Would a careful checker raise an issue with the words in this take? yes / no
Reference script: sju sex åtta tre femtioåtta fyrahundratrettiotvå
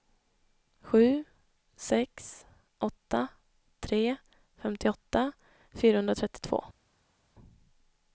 no